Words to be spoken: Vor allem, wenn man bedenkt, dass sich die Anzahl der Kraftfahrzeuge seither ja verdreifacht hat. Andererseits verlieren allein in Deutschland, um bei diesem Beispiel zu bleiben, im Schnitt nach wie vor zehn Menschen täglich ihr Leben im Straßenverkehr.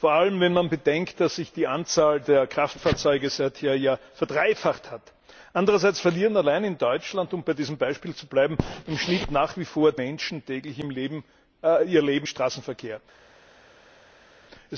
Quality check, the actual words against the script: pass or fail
fail